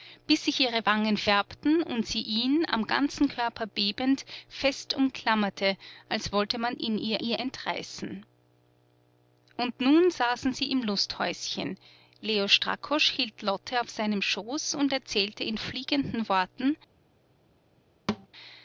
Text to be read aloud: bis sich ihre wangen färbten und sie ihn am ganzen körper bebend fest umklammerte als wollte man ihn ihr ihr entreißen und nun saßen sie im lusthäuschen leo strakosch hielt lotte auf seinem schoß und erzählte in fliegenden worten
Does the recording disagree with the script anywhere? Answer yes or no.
no